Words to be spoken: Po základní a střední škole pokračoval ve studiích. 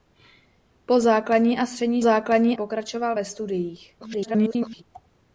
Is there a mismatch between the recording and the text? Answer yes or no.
yes